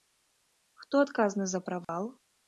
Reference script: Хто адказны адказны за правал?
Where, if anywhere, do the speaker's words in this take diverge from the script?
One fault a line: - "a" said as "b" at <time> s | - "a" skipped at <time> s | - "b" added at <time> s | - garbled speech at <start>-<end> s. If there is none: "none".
- "адказны" skipped at 1.5 s